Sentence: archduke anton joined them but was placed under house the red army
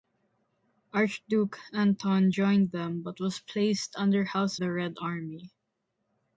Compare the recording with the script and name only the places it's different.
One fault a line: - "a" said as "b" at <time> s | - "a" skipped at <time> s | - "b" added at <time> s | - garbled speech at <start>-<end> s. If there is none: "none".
none